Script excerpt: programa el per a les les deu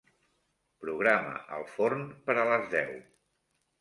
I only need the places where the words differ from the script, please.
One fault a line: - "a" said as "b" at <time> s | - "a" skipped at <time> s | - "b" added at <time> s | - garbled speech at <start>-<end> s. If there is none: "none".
- "forn" added at 1.8 s
- "les" skipped at 2.7 s